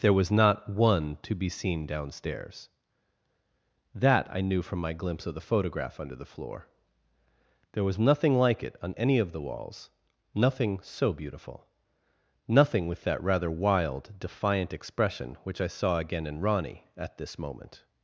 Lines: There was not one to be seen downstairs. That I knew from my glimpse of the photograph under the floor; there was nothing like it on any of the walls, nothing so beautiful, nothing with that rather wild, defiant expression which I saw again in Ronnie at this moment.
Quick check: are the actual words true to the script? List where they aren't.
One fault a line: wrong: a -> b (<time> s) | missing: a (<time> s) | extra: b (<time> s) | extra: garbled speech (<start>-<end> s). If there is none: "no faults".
no faults